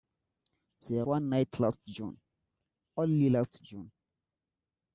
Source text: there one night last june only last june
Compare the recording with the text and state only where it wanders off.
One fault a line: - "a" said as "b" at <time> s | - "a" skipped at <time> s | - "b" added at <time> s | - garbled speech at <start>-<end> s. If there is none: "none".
none